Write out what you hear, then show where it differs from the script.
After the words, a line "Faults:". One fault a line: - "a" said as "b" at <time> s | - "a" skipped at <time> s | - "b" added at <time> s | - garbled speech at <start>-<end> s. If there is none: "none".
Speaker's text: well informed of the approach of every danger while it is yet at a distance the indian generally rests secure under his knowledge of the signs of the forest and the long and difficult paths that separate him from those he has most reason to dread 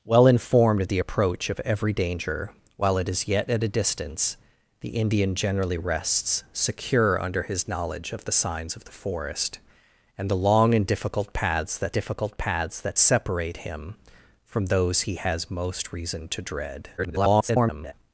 well informed of the approach of every danger while it is yet at a distance the indian generally rests secure under his knowledge of the signs of the forest and the long and difficult paths that difficult paths that separate him from those he has most reason to dread [garbled]
Faults:
- "difficult paths that" added at 11.9 s
- garbled speech at 17.0-17.9 s